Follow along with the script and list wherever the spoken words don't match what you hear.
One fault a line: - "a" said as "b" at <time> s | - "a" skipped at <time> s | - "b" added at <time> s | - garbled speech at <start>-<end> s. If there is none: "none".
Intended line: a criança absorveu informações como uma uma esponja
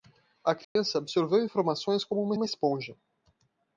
none